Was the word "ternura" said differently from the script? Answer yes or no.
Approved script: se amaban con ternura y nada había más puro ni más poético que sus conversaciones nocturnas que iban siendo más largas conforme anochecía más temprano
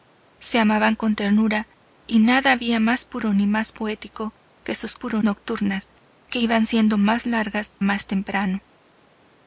no